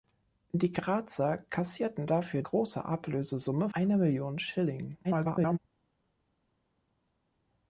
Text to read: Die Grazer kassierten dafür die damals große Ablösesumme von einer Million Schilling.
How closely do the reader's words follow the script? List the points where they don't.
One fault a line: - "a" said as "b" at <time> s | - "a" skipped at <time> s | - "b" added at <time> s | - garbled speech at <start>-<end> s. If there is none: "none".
- "die damals" skipped at 2.4 s
- "von" skipped at 3.7 s
- garbled speech at 5.0-5.6 s